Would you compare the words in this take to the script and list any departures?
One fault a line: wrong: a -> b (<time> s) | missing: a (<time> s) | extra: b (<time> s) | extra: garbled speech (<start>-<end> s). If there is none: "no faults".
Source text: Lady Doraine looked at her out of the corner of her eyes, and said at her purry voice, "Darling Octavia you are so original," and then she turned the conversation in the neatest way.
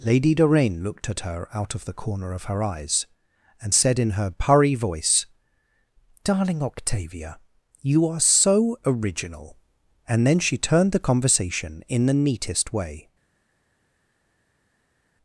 wrong: at -> in (4.0 s)